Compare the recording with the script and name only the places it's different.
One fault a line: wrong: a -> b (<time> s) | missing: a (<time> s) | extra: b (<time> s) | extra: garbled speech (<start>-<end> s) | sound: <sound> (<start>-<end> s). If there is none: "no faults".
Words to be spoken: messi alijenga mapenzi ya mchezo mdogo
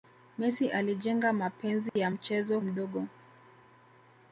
sound: dropout (1.9-2.0 s)